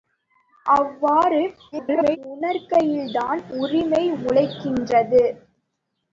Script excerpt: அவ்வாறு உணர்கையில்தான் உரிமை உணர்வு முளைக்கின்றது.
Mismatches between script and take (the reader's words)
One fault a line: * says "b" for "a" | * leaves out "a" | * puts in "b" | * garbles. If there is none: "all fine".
* garbles
* leaves out "உணர்வு"